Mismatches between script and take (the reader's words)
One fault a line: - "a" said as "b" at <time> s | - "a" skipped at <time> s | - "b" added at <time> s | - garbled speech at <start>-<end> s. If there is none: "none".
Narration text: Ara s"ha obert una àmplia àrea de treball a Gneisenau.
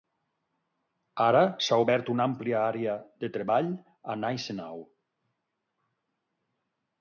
none